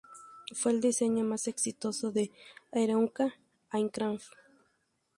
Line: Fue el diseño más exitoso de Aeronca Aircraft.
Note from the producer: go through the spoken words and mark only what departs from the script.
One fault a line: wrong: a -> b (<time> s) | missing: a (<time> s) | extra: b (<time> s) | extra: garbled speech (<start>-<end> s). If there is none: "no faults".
no faults